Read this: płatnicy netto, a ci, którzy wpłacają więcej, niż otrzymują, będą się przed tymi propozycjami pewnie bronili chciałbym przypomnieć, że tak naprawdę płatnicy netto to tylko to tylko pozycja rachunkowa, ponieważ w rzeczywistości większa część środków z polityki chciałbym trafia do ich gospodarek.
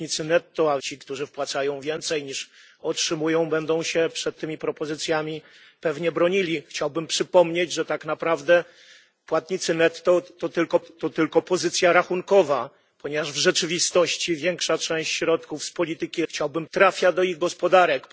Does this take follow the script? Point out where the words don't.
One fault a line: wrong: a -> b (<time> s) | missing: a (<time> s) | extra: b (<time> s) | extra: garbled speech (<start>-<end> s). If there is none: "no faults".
no faults